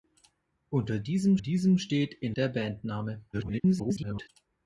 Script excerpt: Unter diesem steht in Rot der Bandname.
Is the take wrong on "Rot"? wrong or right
wrong